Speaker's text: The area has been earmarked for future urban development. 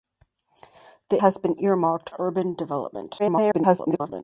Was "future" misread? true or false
true